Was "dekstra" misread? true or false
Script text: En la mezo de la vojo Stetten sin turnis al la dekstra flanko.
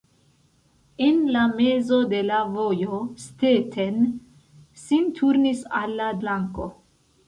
true